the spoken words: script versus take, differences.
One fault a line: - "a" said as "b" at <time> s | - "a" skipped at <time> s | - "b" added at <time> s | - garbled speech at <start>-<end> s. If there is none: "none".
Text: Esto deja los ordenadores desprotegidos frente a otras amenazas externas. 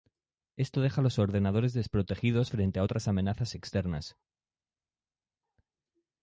none